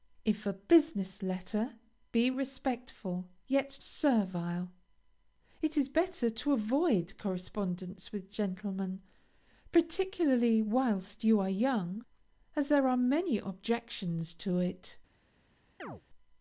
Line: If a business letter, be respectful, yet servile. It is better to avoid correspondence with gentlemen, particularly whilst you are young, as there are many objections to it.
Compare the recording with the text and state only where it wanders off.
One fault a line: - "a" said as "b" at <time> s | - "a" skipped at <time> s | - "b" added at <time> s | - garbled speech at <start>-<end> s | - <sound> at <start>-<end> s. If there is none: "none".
- chirp at 15.8-16.0 s